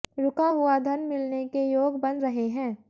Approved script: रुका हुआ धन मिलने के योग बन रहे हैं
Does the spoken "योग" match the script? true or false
true